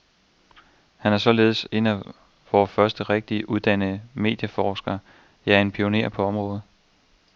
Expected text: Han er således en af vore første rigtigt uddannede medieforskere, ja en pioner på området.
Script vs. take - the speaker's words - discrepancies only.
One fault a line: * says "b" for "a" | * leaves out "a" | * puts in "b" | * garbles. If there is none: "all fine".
all fine